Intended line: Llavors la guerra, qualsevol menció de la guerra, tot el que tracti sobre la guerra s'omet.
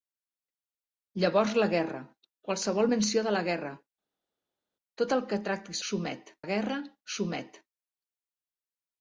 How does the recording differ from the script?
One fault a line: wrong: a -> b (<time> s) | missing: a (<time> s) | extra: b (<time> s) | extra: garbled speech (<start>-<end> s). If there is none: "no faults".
wrong: sobre -> s'omet (5.9 s)